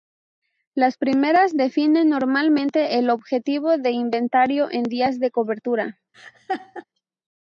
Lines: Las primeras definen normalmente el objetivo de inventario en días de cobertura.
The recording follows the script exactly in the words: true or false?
true